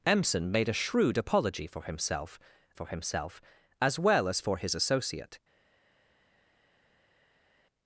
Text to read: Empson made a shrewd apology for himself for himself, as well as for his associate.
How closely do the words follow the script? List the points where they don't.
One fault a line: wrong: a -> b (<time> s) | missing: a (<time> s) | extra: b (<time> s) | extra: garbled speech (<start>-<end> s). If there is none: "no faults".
no faults